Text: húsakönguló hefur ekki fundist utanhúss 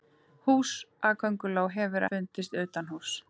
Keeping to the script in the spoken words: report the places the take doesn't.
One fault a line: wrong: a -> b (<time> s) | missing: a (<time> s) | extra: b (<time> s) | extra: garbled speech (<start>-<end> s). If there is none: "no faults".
missing: ekki (2.0 s)